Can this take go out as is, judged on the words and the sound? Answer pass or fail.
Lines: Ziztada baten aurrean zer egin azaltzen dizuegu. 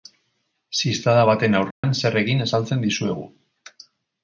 fail